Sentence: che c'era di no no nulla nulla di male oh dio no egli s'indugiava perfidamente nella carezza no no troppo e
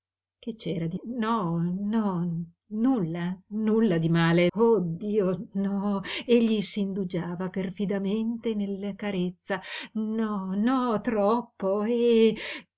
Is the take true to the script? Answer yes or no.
yes